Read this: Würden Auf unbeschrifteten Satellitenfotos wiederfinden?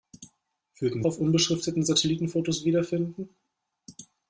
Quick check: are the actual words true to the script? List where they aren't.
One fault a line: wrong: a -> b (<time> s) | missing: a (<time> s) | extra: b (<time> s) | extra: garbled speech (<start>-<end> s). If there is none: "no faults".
no faults